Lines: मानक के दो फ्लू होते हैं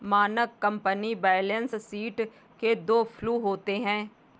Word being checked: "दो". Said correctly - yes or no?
yes